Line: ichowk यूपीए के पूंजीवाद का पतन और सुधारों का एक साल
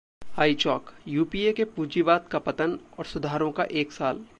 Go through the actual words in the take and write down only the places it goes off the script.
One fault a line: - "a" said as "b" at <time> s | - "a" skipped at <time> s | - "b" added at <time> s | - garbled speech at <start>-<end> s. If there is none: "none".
none